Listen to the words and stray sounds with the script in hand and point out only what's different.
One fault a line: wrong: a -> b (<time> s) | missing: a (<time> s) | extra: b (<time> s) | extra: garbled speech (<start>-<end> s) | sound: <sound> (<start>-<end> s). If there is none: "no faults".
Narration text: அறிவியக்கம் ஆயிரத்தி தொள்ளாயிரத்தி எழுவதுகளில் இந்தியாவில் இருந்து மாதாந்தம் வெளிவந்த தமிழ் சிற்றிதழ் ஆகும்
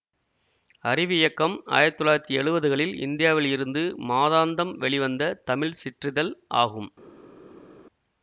no faults